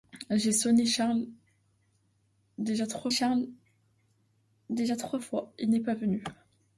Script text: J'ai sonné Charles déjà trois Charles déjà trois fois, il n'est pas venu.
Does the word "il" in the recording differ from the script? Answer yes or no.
no